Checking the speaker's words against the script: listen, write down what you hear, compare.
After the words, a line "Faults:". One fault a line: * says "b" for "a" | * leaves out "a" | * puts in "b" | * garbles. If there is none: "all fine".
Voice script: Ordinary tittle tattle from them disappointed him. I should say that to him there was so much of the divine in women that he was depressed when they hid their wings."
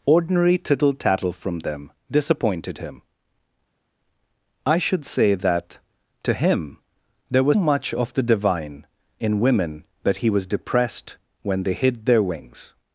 Ordinary tittle tattle from them disappointed him. I should say that to him there was much of the divine in women that he was depressed when they hid their wings."
Faults:
* leaves out "so"